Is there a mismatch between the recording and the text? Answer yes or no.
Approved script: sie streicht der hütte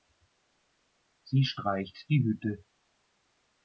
yes